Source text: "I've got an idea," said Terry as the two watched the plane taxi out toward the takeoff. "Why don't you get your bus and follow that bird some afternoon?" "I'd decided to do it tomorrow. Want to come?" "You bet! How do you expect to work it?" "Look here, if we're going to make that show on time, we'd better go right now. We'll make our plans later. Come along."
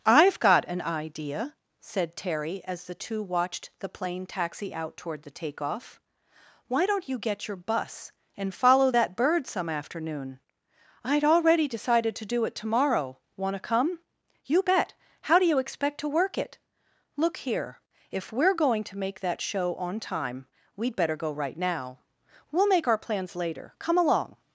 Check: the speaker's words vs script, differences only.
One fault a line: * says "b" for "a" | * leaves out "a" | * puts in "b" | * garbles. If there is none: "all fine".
* puts in "already"